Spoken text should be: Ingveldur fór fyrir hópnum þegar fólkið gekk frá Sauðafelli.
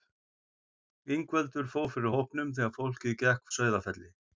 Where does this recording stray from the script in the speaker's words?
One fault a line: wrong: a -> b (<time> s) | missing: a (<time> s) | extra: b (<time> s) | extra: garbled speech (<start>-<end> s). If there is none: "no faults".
missing: frá (3.5 s)